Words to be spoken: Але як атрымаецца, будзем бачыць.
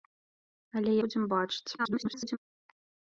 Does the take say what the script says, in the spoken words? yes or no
no